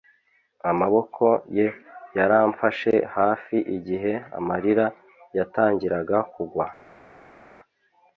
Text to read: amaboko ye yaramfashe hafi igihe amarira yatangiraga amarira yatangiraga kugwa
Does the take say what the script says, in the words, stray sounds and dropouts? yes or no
no